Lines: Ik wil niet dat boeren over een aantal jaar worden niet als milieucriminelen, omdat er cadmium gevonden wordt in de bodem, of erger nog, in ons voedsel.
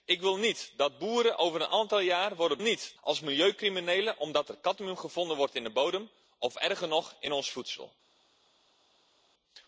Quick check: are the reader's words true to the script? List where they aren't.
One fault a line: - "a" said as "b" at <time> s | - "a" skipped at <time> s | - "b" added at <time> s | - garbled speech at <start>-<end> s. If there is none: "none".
none